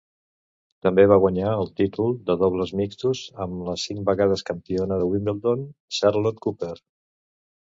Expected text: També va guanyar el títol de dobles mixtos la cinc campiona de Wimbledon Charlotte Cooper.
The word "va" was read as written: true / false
true